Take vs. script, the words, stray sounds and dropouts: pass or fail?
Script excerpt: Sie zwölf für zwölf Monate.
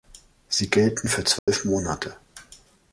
fail